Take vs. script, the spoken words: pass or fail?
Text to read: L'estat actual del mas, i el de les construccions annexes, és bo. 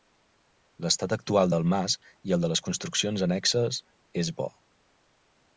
pass